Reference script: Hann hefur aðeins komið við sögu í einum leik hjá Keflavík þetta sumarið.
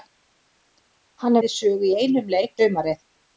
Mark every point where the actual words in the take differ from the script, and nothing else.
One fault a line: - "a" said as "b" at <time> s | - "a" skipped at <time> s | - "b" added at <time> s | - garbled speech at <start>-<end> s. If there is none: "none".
- "hefur aðeins komið" skipped at 1.4 s
- "hjá Keflavík þetta" skipped at 2.6 s